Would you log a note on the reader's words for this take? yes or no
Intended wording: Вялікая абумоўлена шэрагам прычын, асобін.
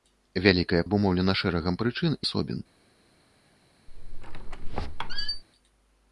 no